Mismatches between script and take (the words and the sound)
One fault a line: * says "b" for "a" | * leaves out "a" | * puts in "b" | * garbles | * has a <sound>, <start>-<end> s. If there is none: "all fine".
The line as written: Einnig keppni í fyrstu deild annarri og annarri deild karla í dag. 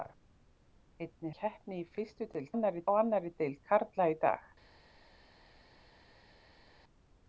all fine